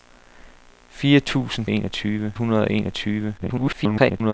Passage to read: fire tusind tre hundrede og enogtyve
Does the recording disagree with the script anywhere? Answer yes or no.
yes